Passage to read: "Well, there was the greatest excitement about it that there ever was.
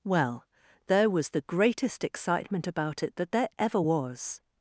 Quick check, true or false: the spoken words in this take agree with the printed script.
true